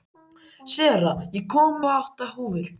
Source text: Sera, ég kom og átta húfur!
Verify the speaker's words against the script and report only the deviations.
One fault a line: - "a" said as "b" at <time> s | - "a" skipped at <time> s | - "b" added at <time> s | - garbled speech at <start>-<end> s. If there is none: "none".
none